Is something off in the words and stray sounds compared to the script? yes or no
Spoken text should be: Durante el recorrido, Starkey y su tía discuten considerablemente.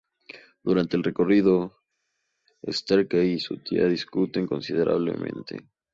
no